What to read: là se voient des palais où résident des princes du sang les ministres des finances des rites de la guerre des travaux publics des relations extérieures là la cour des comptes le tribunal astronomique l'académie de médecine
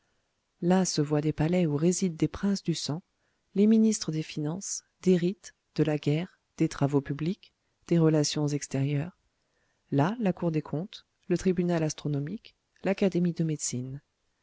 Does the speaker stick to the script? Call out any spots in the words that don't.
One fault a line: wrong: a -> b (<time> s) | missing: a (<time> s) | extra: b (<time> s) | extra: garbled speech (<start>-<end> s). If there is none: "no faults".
no faults